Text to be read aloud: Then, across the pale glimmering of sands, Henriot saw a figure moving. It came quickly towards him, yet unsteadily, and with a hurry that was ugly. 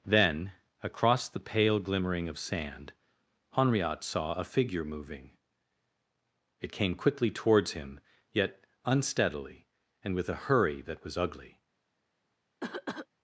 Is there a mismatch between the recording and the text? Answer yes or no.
yes